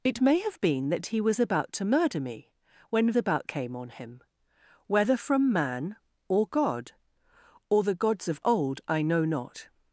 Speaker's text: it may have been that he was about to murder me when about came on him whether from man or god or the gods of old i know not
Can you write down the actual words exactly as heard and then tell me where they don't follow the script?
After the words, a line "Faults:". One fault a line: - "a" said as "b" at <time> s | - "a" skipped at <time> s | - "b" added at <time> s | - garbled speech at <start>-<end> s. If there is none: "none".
it may have been that he was about to murder me when about came on him whether from man or god or the gods of old i know not
Faults:
none